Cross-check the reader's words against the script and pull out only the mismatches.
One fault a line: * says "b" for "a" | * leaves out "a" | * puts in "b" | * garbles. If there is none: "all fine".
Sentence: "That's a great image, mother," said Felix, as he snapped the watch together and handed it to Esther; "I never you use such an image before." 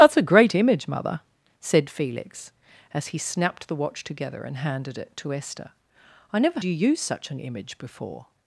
all fine